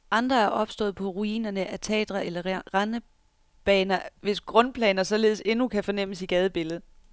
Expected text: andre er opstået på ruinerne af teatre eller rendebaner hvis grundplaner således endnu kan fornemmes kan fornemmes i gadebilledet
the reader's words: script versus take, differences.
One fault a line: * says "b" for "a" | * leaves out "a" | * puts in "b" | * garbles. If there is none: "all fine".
* leaves out "kan fornemmes"